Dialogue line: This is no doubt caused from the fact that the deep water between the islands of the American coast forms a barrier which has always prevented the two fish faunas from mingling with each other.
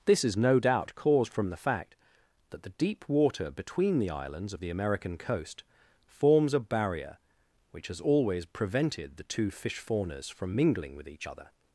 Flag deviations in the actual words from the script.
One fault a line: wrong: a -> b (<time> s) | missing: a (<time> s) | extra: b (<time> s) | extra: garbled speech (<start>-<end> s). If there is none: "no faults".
no faults